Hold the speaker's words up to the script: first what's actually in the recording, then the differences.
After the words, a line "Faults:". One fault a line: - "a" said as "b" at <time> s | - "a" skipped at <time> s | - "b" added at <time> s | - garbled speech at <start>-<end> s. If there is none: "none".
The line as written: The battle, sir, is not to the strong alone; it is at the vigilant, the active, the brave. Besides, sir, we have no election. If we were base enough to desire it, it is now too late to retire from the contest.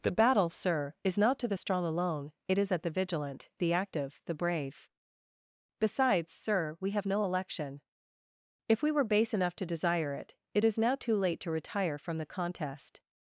The battle, sir, is not to the strong alone; it is at the vigilant, the active, the brave. Besides, sir, we have no election. If we were base enough to desire it, it is now too late to retire from the contest.
Faults:
none